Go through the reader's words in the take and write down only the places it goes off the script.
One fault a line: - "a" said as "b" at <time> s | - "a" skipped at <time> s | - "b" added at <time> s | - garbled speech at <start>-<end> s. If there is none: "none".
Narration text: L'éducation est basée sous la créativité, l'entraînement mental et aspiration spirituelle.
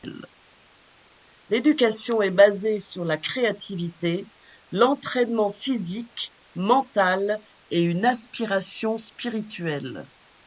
- "sous" said as "sur" at 2.8 s
- "physique" added at 5.5 s
- "une" added at 7.8 s